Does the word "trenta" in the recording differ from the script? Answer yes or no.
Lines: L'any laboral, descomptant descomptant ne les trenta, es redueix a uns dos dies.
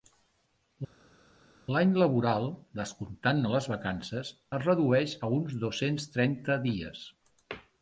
yes